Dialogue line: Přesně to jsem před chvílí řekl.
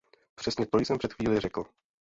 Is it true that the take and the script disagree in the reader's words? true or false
false